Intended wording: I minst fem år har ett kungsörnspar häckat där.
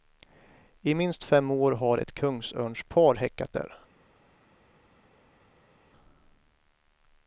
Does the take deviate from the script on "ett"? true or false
false